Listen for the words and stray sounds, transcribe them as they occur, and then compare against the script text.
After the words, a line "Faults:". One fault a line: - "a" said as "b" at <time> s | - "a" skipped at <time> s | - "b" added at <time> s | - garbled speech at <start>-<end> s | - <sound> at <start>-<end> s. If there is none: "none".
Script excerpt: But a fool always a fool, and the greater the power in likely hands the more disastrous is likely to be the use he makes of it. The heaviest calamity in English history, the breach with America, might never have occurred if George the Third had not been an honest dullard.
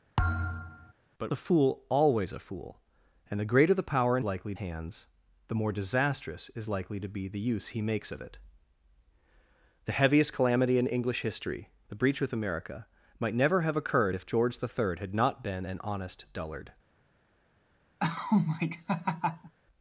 But a fool always a fool, and the greater the power in likely hands the more disastrous is likely to be the use he makes of it. The heaviest calamity in English history, the breach with America, might never have occurred if George the Third had not been an honest dullard.
Faults:
- thud at 0.2-0.9 s
- laugh at 18.0-19.5 s